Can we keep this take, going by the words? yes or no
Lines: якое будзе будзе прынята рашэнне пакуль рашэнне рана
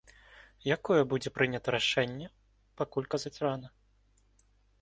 no